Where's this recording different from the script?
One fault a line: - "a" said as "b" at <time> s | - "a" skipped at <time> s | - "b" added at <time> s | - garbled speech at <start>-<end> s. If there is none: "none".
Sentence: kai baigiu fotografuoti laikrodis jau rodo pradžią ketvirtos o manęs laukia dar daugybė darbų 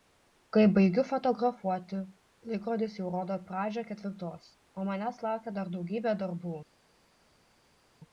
none